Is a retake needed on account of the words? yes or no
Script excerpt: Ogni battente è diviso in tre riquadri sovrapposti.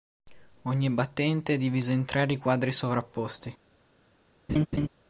no